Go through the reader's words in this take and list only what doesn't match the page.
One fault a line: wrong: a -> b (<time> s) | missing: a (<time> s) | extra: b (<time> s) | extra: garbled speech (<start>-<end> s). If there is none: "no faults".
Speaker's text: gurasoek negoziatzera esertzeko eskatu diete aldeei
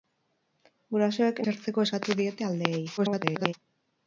missing: negoziatzera (1.4 s)
extra: garbled speech (3.0-3.5 s)